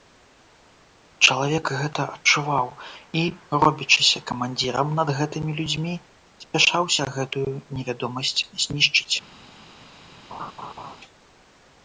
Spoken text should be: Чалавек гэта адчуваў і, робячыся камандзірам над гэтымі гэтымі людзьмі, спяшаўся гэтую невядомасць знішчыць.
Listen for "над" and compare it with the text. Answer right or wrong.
right